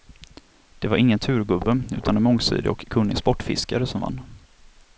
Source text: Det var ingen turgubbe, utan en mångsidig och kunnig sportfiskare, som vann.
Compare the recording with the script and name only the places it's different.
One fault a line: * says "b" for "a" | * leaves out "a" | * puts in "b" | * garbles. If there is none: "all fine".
all fine